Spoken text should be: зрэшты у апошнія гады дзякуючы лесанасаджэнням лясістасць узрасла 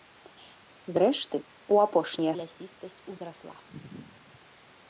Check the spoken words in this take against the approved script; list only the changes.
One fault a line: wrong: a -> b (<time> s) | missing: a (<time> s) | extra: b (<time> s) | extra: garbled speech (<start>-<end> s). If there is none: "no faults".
missing: гады дзякуючы лесанасаджэнням (2.3 s)